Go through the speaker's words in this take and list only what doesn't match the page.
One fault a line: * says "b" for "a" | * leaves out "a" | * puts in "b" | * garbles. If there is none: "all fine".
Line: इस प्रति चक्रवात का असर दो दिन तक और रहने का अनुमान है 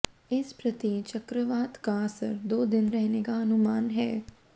* leaves out "तक और"